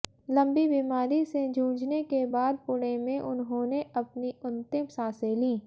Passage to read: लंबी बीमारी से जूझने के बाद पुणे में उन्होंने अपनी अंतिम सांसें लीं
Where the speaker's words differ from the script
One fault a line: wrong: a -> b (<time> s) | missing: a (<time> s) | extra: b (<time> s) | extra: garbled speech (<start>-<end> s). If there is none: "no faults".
no faults